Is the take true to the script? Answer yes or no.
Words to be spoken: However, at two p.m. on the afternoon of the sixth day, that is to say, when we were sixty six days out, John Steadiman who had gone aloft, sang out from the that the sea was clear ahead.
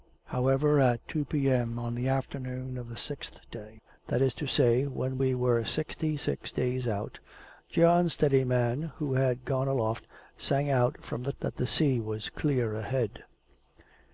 yes